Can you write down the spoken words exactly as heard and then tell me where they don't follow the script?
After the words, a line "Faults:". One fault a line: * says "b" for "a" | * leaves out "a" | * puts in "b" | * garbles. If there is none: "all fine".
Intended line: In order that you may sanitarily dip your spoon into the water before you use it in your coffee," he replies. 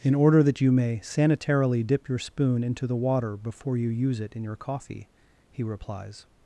In order that you may sanitarily dip your spoon into the water before you use it in your coffee," he replies.
Faults:
all fine